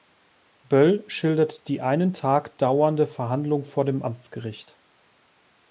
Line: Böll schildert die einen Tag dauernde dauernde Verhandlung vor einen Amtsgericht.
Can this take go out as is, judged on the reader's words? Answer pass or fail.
fail